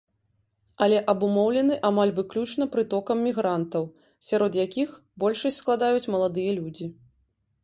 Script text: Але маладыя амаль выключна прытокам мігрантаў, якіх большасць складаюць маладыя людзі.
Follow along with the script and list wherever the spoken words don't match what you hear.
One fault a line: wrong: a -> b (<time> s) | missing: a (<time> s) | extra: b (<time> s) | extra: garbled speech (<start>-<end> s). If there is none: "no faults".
wrong: маладыя -> абумоўлены (1.1 s)
extra: сярод (4.3 s)